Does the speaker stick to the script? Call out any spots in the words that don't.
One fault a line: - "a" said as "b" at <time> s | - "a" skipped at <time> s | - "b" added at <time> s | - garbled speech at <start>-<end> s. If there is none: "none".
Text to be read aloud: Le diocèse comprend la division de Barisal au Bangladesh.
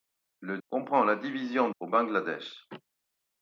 - "diocèse" skipped at 0.6 s
- "de Barisal" skipped at 1.7 s